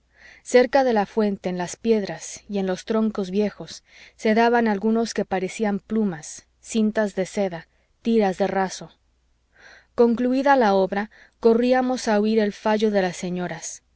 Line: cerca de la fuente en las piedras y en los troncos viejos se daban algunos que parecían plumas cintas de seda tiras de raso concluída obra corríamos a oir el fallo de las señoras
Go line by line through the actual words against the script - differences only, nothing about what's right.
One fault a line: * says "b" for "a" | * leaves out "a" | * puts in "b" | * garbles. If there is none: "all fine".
* puts in "la"